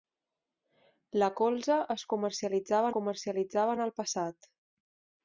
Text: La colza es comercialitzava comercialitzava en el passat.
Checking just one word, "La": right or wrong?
right